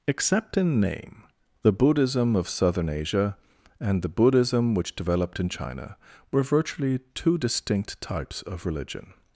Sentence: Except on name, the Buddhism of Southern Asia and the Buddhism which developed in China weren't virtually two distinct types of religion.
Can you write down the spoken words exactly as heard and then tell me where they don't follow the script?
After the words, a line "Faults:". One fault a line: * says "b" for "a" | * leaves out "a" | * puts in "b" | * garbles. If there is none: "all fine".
Except in name, the Buddhism of Southern Asia and the Buddhism which developed in China were virtually two distinct types of religion.
Faults:
* says "in" for "on"
* says "were" for "weren't"